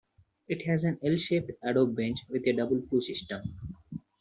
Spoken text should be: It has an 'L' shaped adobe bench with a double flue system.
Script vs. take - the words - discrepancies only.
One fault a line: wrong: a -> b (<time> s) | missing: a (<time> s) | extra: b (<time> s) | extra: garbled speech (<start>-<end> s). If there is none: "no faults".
no faults